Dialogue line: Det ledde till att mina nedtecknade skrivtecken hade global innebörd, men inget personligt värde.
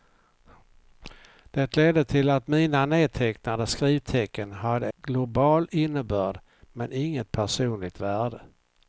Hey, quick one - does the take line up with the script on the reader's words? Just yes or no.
yes